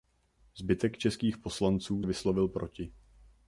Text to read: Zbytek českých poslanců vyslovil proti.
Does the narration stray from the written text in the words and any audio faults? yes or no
no